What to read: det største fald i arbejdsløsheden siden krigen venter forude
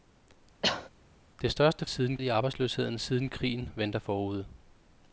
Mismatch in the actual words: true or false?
true